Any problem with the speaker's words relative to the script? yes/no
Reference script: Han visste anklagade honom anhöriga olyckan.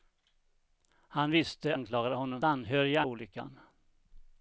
no